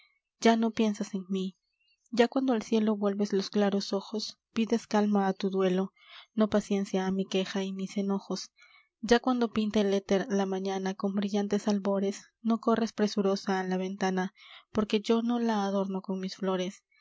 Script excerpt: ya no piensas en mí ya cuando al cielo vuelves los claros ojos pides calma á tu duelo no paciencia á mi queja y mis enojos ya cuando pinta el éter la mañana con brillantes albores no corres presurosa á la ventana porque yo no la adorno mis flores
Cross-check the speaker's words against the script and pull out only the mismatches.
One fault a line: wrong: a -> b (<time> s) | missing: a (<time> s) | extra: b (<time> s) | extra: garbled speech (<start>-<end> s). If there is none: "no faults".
extra: con (16.0 s)